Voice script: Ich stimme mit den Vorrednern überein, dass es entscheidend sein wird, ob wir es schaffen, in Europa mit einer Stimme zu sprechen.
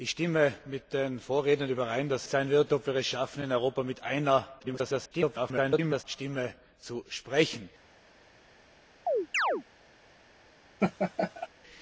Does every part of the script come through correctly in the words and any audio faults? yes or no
no